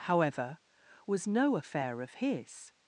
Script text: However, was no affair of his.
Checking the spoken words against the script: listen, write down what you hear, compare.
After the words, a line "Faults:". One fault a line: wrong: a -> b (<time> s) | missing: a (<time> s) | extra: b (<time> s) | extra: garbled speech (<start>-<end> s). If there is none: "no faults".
However, was no affair of his.
Faults:
no faults